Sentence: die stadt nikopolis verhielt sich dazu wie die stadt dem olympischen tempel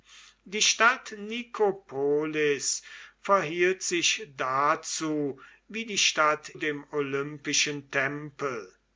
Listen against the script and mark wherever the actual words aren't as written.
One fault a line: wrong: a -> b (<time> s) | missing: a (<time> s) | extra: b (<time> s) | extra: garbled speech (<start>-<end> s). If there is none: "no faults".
no faults